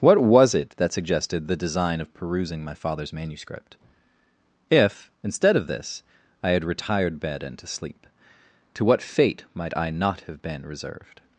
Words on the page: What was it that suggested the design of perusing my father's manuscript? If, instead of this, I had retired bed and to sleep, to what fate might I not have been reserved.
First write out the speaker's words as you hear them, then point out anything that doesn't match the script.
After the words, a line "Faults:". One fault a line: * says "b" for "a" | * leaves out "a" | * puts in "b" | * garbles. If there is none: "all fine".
What was it that suggested the design of perusing my father's manuscript? If, instead of this, I had retired bed and to sleep, to what fate might I not have been reserved.
Faults:
all fine